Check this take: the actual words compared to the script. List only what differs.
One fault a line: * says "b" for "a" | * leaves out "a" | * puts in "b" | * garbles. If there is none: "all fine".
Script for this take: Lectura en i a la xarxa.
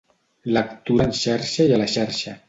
* puts in "xarxa"